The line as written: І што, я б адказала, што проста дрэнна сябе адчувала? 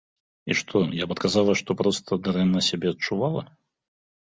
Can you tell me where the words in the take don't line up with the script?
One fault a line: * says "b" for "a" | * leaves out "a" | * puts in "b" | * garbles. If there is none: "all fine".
all fine